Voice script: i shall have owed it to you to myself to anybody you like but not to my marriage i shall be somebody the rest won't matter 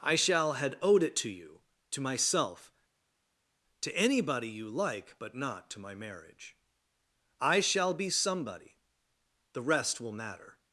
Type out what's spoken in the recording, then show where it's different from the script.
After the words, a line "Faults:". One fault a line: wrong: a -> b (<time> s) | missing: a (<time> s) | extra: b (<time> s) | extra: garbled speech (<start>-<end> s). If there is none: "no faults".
i shall had owed it to you to myself to anybody you like but not to my marriage i shall be somebody the rest will matter
Faults:
wrong: have -> had (0.5 s)
wrong: won't -> will (10.0 s)